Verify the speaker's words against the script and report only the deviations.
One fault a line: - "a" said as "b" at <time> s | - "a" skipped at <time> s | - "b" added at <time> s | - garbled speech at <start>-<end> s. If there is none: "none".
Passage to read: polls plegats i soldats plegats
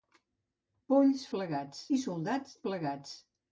none